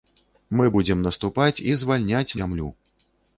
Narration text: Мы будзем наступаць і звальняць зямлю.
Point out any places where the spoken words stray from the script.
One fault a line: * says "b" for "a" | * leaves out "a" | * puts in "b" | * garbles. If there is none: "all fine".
all fine